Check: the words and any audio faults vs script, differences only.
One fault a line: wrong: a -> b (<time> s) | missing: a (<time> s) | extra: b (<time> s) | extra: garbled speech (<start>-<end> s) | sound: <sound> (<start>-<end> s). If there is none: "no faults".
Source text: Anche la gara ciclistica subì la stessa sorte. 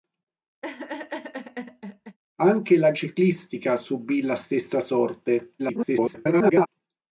sound: laugh (0.6-2.2 s)
missing: gara (2.9 s)
extra: garbled speech (5.6-6.7 s)